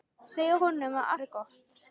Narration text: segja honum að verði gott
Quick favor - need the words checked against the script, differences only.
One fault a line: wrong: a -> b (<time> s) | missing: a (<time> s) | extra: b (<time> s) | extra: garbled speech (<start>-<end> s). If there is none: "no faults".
no faults